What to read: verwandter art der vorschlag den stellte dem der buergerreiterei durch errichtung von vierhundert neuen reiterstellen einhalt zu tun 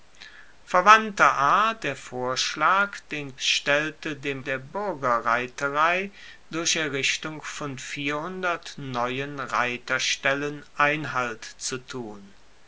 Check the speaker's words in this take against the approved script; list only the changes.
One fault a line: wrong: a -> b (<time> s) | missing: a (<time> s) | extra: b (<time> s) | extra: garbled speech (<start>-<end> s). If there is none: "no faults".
no faults